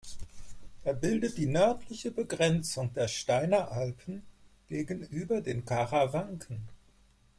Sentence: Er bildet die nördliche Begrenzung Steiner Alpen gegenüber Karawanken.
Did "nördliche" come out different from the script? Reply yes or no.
no